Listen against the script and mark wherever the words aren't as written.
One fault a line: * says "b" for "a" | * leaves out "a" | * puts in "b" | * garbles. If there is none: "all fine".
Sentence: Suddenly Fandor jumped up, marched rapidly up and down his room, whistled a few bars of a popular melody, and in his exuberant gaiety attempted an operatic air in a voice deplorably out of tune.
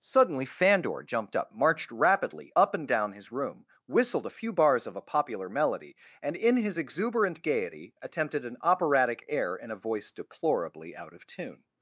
all fine